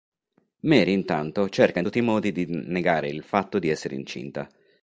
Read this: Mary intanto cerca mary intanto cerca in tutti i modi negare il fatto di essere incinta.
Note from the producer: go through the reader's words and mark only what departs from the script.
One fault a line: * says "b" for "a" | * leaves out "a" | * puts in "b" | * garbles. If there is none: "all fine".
* leaves out "mary intanto cerca"
* puts in "di"